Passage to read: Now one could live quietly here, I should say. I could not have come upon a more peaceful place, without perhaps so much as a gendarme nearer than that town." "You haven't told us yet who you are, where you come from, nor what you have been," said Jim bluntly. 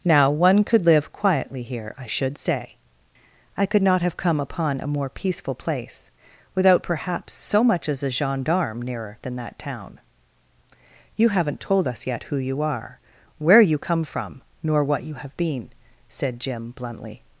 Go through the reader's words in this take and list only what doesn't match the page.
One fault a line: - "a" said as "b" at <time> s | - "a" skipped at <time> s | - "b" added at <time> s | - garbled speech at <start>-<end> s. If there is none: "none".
none